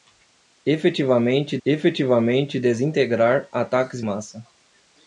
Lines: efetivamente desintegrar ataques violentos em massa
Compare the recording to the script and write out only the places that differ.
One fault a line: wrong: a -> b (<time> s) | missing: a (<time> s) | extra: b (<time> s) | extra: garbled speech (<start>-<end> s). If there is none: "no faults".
extra: efetivamente (1.6 s)
missing: violentos em (4.0 s)